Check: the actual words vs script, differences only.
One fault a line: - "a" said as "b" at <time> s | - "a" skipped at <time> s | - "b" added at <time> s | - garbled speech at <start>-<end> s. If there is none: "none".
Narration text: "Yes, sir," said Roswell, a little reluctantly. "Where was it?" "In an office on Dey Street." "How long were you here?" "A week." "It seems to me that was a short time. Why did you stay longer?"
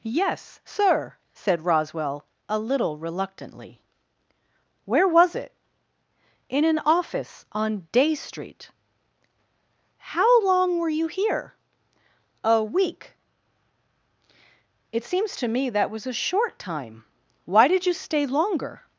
none